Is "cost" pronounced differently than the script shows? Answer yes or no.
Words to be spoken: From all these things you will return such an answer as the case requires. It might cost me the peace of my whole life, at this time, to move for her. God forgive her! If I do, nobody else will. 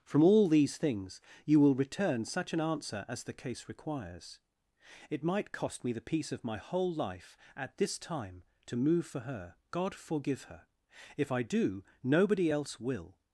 no